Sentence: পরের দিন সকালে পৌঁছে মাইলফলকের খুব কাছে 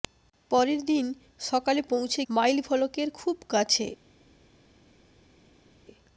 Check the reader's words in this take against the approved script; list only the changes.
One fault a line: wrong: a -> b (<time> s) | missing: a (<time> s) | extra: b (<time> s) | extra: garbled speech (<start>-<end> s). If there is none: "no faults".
no faults